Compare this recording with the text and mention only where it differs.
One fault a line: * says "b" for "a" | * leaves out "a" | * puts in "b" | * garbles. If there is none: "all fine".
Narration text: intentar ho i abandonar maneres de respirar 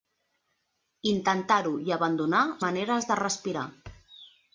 all fine